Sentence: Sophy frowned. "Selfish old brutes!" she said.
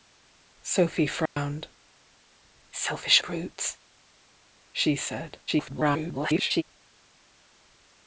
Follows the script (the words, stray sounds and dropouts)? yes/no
no